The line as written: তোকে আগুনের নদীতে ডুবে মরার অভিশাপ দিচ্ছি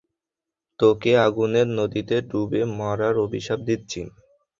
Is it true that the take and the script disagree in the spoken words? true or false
false